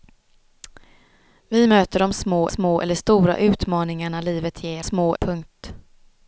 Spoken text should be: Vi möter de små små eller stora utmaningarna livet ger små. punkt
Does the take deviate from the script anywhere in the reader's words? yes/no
no